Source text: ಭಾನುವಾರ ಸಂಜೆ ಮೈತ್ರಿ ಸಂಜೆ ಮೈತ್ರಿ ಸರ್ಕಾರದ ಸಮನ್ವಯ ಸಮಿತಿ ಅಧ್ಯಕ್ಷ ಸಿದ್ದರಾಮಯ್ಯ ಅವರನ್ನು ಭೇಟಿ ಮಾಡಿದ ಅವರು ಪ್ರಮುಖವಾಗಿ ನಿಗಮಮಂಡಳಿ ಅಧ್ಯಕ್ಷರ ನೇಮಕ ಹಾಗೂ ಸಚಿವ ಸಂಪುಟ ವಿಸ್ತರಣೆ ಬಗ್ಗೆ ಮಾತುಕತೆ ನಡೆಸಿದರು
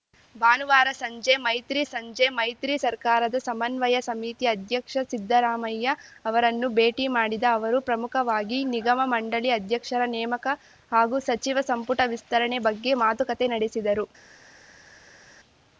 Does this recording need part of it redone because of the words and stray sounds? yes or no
no